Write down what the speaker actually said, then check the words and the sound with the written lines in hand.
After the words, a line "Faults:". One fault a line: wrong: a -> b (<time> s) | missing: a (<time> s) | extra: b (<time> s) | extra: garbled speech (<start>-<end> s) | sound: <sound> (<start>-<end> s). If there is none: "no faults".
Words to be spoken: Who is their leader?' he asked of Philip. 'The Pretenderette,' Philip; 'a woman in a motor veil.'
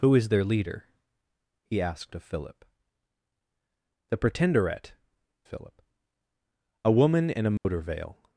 Who is their leader?' he asked of Philip. 'The Pretenderette,' Philip; 'a woman in a motor veil.'
Faults:
sound: dropout (7.6-7.7 s)